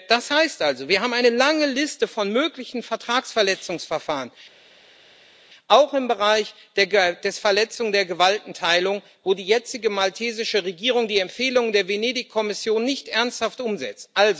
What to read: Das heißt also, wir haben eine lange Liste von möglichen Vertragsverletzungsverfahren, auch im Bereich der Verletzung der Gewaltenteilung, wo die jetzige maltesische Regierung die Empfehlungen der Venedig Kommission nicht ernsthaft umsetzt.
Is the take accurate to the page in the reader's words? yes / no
yes